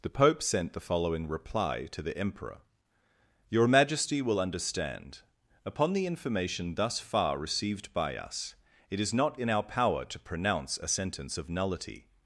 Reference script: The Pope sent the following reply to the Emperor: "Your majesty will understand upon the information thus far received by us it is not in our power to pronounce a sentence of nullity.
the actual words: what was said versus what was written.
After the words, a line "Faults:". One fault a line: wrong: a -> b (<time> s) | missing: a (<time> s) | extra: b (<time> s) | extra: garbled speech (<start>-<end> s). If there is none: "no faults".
The Pope sent the following reply to the Emperor: "Your majesty will understand upon the information thus far received by us it is not in our power to pronounce a sentence of nullity.
Faults:
no faults